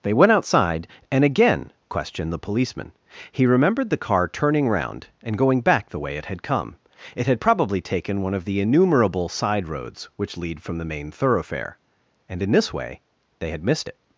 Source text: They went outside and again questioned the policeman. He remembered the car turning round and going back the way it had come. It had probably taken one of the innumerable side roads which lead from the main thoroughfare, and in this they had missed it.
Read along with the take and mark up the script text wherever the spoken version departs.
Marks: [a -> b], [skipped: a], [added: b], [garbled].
They went outside and again questioned the policeman. He remembered the car turning round and going back the way it had come. It had probably taken one of the innumerable side roads which lead from the main thoroughfare, and in this [added: way] they had missed it.